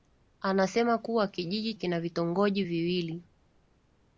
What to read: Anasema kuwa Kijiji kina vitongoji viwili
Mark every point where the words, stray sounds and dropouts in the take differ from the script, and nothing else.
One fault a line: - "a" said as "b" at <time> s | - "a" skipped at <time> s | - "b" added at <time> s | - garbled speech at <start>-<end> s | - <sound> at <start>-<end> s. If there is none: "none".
none